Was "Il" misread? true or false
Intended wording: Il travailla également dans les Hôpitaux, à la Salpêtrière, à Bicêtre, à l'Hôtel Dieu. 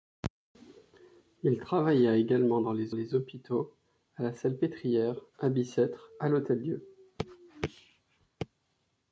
false